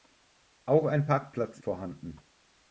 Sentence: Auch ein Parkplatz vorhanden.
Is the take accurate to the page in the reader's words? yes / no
yes